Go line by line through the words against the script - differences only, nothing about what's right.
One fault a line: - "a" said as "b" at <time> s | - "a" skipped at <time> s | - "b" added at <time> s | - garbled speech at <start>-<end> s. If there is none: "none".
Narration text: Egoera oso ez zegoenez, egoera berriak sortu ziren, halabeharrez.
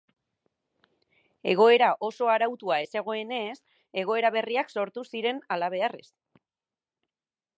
- "arautua" added at 2.4 s